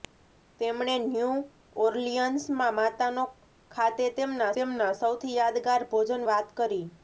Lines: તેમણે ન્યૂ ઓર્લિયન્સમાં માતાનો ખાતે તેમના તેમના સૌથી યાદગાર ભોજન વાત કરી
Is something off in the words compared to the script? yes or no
no